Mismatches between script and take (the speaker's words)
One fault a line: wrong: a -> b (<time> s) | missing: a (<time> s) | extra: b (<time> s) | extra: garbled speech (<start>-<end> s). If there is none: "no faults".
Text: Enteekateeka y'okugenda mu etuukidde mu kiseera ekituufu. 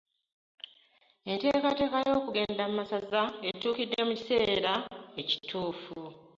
extra: masaza (2.8 s)